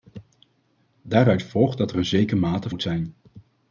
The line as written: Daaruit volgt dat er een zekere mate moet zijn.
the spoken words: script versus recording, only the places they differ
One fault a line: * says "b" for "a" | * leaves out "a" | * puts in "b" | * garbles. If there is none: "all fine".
all fine